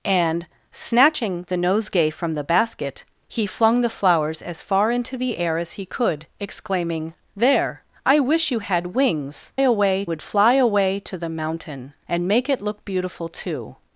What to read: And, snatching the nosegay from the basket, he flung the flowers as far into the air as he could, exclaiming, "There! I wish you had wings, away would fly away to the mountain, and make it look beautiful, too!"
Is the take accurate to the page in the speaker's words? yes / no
yes